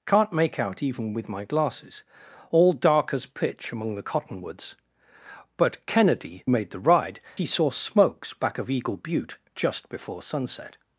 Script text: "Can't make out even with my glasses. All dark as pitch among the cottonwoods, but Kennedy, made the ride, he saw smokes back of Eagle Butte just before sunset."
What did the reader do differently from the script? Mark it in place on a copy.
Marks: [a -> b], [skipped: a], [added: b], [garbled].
"Can't make out even with my glasses. All dark as pitch among the cottonwoods, but Kennedy, made the ride, he saw smokes back of Eagle Butte just before sunset."